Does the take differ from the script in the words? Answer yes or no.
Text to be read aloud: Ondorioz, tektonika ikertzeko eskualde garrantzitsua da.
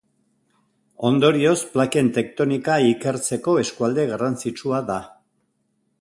yes